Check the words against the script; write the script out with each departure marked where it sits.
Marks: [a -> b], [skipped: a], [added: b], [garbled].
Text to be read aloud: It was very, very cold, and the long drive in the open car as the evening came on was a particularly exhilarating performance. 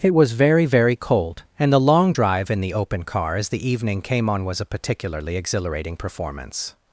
It was very, very cold, and the long drive in the open car as the evening came on was a particularly exhilarating performance.